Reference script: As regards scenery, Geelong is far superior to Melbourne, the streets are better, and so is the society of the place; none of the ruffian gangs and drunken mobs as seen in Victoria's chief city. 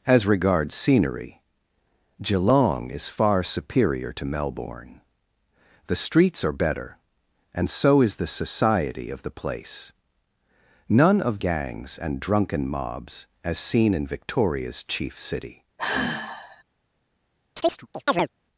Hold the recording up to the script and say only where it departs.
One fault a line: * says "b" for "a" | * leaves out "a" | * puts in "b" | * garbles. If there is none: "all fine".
* leaves out "the ruffian"